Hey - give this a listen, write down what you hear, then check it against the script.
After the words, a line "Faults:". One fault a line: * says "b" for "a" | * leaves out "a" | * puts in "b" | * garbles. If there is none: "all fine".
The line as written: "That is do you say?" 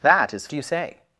"That is do you say?"
Faults:
all fine